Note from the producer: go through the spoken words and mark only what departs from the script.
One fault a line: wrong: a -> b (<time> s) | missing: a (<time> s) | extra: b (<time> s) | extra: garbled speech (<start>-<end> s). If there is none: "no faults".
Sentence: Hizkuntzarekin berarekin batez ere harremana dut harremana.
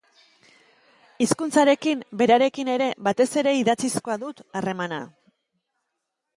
extra: ere (2.8 s)
wrong: harremana -> idatzizkoa (3.6 s)